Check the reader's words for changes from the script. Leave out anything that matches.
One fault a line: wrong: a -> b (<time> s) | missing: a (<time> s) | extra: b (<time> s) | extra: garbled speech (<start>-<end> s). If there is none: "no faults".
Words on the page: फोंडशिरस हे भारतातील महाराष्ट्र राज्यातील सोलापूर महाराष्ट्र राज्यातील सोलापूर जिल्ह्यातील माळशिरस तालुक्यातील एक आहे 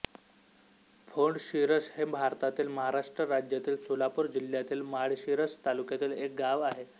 missing: महाराष्ट्र राज्यातील सोलापूर (4.3 s)
extra: गाव (6.3 s)